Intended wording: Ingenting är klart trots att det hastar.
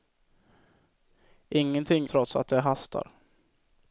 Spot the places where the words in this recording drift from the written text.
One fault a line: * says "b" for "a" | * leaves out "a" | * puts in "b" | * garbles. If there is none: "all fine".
* leaves out "är klart"